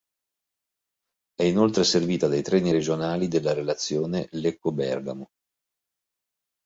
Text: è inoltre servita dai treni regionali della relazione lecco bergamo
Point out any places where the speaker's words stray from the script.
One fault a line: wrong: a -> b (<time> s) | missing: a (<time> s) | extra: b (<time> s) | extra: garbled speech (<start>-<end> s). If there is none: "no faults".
no faults